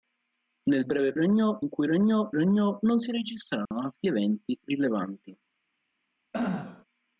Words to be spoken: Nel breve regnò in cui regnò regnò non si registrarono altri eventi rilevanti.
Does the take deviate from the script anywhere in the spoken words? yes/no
no